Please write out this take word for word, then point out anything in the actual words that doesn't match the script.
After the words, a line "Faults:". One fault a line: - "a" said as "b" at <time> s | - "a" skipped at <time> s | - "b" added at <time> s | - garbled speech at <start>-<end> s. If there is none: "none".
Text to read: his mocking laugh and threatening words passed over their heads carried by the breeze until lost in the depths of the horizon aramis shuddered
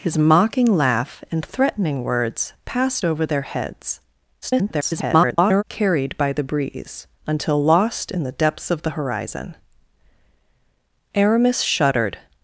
his mocking laugh and threatening words passed over their heads [garbled] carried by the breeze until lost in the depths of the horizon aramis shuddered
Faults:
- garbled speech at 4.4-5.6 s